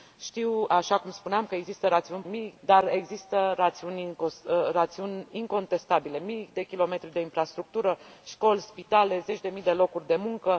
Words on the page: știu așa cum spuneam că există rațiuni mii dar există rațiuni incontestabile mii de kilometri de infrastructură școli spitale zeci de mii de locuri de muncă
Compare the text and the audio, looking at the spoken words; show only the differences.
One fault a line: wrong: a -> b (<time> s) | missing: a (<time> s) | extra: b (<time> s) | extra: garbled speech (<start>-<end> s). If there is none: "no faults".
no faults